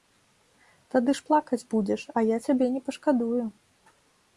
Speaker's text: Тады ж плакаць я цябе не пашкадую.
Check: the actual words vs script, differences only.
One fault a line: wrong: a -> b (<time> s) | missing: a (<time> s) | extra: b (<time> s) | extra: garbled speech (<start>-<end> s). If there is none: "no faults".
extra: будзеш а (1.8 s)